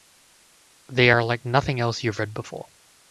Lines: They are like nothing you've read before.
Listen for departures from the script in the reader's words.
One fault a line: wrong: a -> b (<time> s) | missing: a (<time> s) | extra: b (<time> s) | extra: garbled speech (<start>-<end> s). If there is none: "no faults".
extra: else (1.8 s)